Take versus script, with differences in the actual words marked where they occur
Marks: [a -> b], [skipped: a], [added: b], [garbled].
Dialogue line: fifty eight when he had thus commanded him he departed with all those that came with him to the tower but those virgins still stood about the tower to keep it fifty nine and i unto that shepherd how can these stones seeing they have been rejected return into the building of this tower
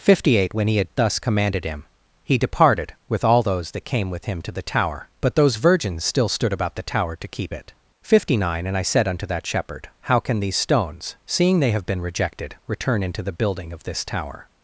fifty eight when he had thus commanded him he departed with all those that came with him to the tower but those virgins still stood about the tower to keep it fifty nine and i [added: said] unto that shepherd how can these stones seeing they have been rejected return into the building of this tower